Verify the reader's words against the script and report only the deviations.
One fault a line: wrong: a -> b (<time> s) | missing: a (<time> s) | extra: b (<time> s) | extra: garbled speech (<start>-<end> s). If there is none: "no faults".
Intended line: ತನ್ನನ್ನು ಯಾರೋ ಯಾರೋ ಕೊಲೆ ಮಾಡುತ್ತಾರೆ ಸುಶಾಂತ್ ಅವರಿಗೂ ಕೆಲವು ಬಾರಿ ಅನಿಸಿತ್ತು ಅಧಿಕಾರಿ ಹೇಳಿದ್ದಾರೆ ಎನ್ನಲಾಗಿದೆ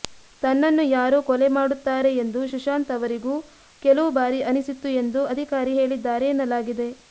missing: ಯಾರೋ (1.2 s)
extra: ಎಂದು (2.2 s)
extra: ಎಂದು (5.0 s)